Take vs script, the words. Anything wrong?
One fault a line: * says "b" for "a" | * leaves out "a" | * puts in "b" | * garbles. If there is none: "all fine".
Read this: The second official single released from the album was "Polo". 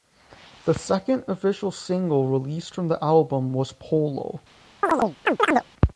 all fine